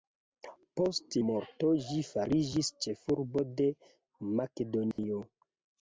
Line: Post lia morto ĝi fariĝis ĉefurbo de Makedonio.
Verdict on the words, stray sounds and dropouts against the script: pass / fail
fail